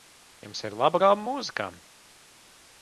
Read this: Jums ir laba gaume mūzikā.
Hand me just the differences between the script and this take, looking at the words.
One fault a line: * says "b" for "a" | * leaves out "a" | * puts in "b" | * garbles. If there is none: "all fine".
all fine